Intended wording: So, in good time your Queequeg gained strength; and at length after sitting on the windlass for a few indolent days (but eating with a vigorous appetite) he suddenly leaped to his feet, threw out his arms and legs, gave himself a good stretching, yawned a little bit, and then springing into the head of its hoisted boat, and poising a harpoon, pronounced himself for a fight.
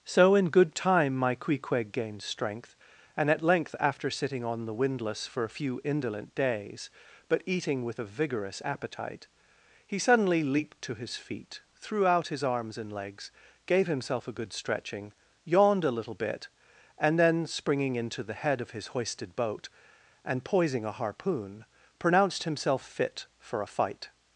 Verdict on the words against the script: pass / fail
fail